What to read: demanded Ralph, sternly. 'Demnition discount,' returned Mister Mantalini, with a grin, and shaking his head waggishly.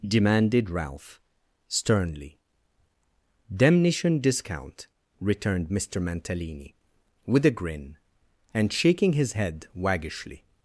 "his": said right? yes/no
yes